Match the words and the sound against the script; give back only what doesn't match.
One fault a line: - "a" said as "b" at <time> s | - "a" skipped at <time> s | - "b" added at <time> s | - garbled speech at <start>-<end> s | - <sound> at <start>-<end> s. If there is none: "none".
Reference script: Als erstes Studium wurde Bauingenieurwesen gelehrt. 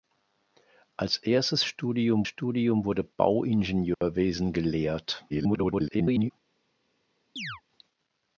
- "Studium" added at 2.2 s
- dropout at 3.9-4.0 s
- garbled speech at 5.3-6.3 s
- chirp at 7.4-7.6 s